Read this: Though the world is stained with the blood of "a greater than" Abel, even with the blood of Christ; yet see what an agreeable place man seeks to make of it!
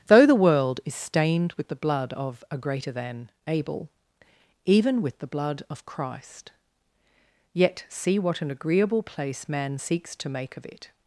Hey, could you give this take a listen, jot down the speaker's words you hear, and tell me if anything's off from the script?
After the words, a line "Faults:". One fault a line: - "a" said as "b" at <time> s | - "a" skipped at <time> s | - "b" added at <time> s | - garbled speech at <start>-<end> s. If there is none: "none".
Though the world is stained with the blood of "a greater than" Abel, even with the blood of Christ; yet see what an agreeable place man seeks to make of it!
Faults:
none